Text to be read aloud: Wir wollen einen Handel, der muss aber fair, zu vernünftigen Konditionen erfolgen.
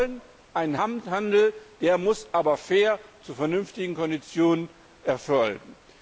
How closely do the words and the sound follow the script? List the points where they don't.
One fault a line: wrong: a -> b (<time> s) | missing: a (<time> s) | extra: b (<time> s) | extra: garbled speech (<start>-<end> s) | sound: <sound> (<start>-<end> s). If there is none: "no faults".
no faults